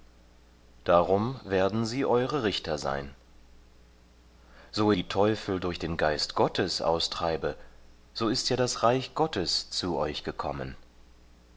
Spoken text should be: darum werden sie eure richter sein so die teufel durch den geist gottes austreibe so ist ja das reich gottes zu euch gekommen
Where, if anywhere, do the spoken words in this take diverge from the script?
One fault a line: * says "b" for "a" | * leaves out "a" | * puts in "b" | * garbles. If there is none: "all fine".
all fine